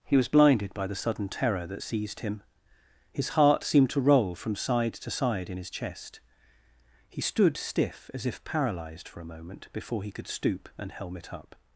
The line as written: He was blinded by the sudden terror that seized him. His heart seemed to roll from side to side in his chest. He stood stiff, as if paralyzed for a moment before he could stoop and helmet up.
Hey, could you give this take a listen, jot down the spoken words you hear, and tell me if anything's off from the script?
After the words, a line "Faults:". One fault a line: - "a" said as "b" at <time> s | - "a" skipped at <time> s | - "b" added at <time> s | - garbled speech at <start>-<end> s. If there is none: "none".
He was blinded by the sudden terror that seized him. His heart seemed to roll from side to side in his chest. He stood stiff, as if paralyzed for a moment before he could stoop and helmet up.
Faults:
none